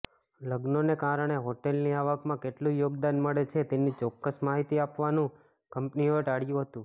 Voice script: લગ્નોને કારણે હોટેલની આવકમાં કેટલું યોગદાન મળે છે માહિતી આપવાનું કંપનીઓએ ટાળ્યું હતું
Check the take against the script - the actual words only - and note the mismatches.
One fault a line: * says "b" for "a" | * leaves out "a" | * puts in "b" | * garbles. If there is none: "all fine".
* puts in "તેની ચોક્કસ"